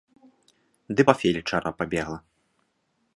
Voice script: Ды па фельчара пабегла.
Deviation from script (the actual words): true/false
false